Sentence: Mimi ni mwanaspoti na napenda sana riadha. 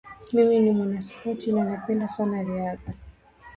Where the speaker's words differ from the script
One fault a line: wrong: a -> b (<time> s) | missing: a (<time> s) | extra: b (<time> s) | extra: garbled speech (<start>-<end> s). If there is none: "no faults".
no faults